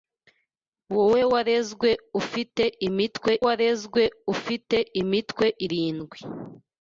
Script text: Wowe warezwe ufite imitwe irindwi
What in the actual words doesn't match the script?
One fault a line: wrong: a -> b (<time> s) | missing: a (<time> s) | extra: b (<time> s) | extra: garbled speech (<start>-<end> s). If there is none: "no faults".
extra: warezwe ufite imitwe (3.4 s)